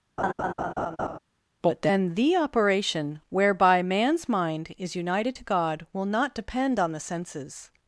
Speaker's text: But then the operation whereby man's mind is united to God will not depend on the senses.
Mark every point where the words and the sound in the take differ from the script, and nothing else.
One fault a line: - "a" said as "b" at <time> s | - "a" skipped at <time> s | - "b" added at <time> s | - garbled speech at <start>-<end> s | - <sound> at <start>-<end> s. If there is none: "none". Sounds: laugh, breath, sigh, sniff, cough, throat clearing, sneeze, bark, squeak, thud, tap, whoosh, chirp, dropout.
- laugh at 0.2-1.2 s